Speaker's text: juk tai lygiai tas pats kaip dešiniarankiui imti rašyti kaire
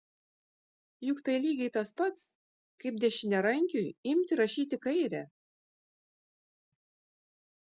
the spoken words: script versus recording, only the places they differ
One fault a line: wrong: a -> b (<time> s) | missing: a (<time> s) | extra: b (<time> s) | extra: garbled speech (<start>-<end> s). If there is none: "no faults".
no faults